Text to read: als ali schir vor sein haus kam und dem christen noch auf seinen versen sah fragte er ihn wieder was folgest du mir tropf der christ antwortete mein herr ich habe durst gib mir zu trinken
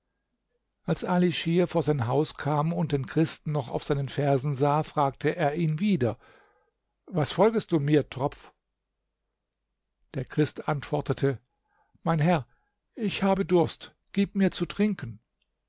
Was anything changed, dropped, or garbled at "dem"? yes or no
yes